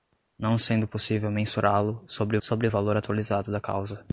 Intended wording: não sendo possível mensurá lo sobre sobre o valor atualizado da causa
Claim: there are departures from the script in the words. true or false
false